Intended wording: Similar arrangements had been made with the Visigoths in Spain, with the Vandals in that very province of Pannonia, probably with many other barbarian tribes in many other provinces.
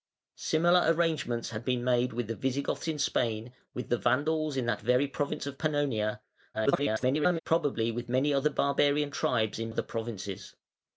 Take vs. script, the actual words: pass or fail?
fail